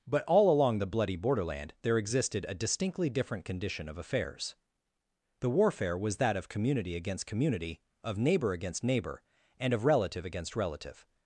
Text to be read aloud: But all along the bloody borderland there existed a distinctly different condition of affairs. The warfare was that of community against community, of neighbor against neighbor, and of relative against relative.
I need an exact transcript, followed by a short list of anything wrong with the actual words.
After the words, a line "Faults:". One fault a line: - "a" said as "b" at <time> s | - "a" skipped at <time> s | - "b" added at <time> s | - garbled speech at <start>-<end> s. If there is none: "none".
But all along the bloody borderland there existed a distinctly different condition of affairs. The warfare was that of community against community, of neighbor against neighbor, and of relative against relative.
Faults:
none